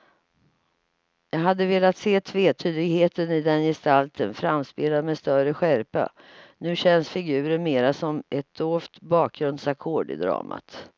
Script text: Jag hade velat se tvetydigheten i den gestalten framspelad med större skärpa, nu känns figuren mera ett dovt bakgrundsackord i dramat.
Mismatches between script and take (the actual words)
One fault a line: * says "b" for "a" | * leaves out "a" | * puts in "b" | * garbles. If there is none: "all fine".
* puts in "som"